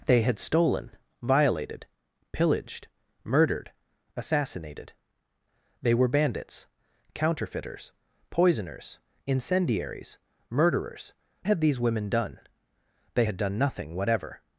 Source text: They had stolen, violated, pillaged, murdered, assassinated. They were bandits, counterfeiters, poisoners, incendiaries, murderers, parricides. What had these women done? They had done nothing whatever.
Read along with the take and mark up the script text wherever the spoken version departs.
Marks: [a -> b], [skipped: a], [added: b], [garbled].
They had stolen, violated, pillaged, murdered, assassinated. They were bandits, counterfeiters, poisoners, incendiaries, murderers, [skipped: parricides. What] had these women done? They had done nothing whatever.